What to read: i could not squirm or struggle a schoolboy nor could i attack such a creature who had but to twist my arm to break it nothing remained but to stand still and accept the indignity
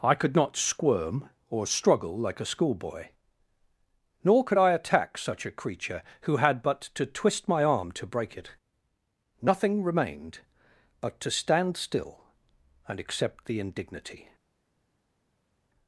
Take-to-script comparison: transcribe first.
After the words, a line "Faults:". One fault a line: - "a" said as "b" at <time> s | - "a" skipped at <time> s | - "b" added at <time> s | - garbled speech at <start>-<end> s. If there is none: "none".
i could not squirm or struggle like a schoolboy nor could i attack such a creature who had but to twist my arm to break it nothing remained but to stand still and accept the indignity
Faults:
- "like" added at 2.2 s